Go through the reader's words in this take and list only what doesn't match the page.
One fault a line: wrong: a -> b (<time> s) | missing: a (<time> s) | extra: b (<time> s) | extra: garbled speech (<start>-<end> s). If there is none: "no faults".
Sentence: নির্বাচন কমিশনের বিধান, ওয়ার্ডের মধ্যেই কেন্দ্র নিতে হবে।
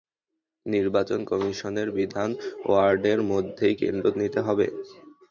no faults